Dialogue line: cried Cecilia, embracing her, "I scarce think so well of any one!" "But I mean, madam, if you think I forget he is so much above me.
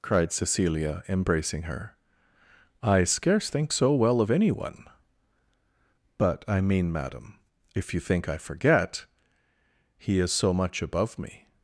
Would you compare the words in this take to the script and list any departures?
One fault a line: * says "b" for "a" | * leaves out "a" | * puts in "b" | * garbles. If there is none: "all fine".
all fine